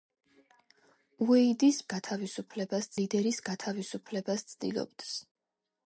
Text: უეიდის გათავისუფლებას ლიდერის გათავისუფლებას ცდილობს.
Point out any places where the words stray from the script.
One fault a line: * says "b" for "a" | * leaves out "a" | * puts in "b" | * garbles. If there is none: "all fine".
all fine